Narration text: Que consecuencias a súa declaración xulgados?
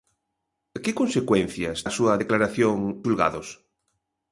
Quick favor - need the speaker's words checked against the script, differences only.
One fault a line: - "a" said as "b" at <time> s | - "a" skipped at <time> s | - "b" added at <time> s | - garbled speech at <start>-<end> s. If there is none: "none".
none